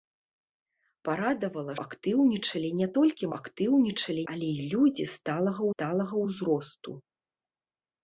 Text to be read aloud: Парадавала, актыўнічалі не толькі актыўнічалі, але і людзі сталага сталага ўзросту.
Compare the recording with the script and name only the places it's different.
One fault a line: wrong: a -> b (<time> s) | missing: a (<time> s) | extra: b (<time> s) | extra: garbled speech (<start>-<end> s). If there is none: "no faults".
no faults